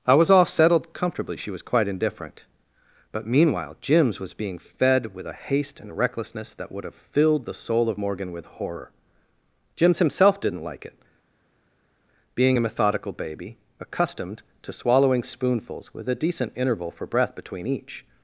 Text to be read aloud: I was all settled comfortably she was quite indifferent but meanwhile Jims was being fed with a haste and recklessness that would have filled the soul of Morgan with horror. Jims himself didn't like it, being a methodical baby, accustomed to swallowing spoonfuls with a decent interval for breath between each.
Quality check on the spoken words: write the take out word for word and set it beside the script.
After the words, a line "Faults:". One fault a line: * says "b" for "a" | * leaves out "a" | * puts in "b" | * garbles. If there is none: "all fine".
I was all settled comfortably she was quite indifferent but meanwhile Jims was being fed with a haste and recklessness that would have filled the soul of Morgan with horror. Jims himself didn't like it, being a methodical baby, accustomed to swallowing spoonfuls with a decent interval for breath between each.
Faults:
all fine